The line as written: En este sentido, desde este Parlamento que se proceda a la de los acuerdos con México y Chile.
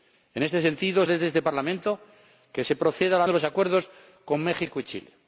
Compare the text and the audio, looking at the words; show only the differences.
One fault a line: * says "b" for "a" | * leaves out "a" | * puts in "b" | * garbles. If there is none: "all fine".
all fine